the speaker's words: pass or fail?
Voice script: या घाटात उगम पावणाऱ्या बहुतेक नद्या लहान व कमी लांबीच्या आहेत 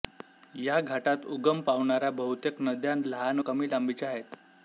fail